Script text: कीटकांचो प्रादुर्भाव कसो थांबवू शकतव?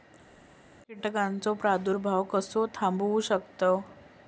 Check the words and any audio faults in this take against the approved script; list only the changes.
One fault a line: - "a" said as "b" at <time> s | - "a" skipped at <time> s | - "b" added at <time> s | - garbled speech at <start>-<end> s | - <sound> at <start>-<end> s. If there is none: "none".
none